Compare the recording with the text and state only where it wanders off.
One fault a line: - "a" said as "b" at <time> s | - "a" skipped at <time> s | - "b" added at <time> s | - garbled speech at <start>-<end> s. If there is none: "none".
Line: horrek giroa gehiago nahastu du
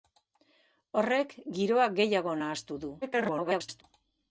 - garbled speech at 3.0-3.8 s